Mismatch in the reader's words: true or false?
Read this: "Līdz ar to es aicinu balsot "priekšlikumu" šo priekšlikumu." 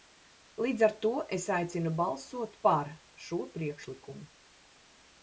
true